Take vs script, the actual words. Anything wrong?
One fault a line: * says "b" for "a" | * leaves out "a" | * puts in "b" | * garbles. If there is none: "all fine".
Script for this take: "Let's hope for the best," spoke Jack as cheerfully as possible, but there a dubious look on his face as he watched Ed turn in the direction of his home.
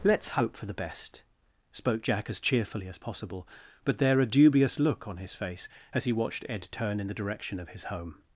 all fine